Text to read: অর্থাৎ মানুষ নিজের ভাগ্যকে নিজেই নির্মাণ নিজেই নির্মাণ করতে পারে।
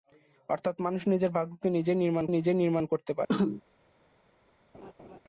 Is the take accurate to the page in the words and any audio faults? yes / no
no